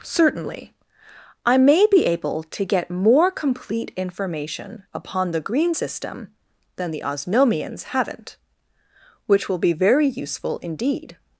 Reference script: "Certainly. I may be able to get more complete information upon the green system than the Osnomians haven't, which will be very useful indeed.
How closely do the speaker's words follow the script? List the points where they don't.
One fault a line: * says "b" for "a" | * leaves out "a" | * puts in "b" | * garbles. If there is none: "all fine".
all fine